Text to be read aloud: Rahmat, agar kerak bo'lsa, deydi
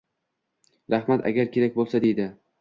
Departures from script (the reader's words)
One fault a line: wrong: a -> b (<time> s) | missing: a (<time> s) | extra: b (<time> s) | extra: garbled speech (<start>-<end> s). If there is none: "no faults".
no faults